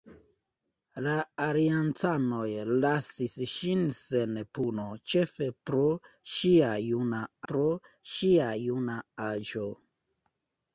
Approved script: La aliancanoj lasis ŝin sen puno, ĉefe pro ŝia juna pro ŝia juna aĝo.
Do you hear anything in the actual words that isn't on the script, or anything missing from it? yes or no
no